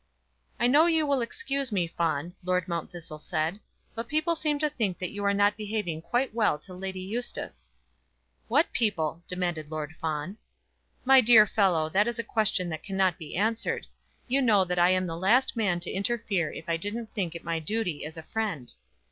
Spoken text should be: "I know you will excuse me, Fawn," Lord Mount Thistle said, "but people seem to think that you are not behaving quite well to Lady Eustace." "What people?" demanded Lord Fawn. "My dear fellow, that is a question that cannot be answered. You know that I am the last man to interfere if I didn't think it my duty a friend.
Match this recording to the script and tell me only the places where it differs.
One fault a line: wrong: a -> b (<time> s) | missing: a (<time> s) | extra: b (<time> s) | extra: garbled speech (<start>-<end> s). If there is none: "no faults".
extra: as (18.1 s)